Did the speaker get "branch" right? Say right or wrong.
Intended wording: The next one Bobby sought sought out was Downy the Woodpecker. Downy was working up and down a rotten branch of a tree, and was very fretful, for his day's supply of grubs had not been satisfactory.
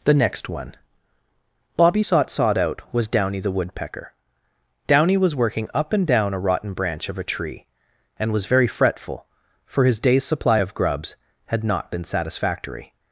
right